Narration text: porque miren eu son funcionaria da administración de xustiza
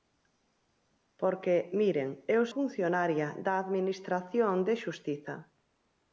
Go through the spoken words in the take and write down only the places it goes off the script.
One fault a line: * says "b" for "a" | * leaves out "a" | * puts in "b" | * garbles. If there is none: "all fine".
* leaves out "son"